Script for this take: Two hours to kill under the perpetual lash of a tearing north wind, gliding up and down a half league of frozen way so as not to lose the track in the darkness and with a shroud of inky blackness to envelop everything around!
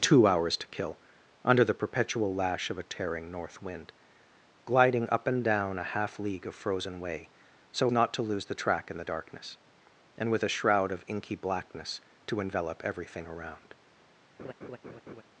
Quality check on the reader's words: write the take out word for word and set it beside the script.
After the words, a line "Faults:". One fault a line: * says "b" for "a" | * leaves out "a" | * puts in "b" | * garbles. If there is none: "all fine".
Two hours to kill under the perpetual lash of a tearing north wind, gliding up and down a half league of frozen way so not to lose the track in the darkness and with a shroud of inky blackness to envelop everything around!
Faults:
* leaves out "as"